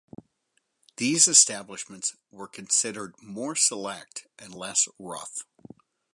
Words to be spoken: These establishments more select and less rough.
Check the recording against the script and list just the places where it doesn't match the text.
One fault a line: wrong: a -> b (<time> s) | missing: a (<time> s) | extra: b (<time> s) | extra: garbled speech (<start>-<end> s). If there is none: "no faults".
extra: were considered (2.3 s)